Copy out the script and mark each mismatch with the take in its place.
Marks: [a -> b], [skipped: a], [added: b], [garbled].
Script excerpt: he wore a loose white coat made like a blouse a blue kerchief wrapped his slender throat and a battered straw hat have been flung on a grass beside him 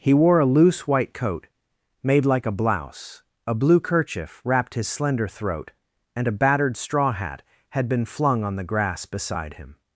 he wore a loose white coat made like a blouse a blue kerchief wrapped his slender throat and a battered straw hat [have -> had] been flung on [a -> the] grass beside him